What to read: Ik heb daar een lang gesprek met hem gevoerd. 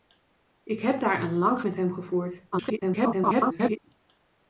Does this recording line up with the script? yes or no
no